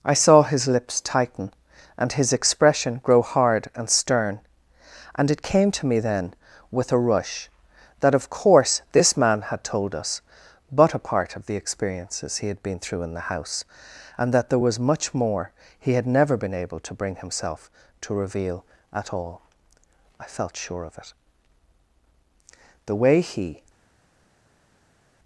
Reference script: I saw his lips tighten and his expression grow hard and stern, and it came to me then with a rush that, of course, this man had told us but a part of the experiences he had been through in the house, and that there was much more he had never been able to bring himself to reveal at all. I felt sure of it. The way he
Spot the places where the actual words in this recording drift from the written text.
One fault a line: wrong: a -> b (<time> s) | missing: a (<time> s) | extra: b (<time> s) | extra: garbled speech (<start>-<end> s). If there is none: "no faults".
no faults